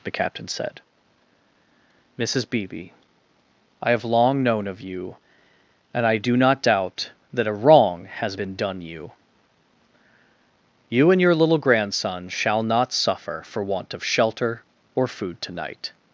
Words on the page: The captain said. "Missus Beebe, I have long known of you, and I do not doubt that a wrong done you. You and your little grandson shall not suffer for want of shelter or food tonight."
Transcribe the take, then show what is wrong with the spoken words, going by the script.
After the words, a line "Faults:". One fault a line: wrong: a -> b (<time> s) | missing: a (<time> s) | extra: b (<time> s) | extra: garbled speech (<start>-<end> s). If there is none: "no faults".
The captain said. "Missus Beebe, I have long known of you, and I do not doubt that a wrong has been done you. You and your little grandson shall not suffer for want of shelter or food tonight."
Faults:
extra: has been (8.2 s)